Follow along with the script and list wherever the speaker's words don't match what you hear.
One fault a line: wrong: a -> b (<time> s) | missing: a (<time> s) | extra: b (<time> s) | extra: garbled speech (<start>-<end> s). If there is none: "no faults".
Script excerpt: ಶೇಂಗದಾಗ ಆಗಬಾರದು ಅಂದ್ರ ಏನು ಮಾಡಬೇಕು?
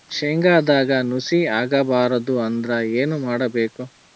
extra: ನುಸಿ (1.0 s)